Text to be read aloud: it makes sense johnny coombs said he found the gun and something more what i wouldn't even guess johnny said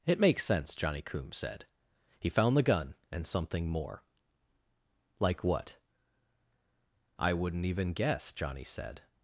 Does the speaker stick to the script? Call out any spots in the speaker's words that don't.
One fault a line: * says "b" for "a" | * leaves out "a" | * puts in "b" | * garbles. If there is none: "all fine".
* puts in "like"